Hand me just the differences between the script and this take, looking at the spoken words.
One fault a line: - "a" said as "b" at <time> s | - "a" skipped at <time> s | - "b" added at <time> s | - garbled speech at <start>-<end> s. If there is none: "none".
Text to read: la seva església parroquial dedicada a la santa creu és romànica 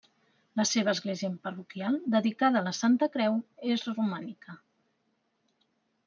none